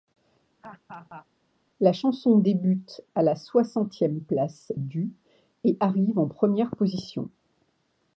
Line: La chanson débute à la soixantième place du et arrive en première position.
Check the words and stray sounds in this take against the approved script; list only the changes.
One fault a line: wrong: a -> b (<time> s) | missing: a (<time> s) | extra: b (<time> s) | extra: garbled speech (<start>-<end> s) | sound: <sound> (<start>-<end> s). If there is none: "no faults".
sound: laugh (0.6-1.3 s)